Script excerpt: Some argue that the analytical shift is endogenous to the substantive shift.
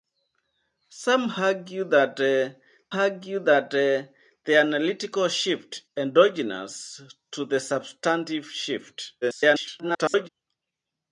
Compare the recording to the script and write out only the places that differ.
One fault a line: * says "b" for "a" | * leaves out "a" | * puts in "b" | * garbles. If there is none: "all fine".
* puts in "argue that the"
* leaves out "is"
* garbles